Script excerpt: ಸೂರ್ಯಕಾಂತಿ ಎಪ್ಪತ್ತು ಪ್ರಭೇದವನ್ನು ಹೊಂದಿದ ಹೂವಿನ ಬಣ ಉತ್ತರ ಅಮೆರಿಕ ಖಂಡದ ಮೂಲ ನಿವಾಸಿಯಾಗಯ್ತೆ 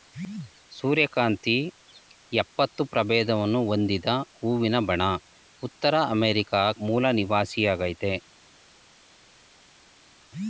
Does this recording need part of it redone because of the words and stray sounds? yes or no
yes